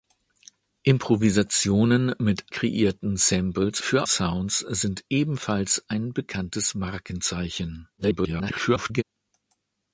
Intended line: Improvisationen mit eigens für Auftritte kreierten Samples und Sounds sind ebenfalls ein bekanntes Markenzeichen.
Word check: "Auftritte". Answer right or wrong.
wrong